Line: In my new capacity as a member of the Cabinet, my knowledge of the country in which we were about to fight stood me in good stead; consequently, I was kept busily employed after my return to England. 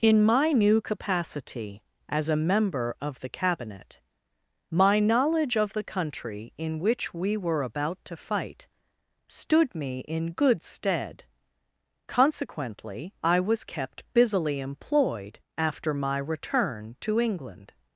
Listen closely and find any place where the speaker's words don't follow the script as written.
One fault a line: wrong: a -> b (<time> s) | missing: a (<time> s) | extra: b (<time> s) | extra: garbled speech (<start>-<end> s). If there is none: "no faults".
no faults